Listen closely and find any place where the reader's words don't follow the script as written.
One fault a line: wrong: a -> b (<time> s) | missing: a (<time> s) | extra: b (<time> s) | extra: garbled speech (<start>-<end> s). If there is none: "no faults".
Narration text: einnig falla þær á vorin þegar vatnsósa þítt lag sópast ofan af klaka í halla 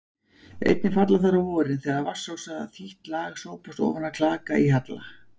no faults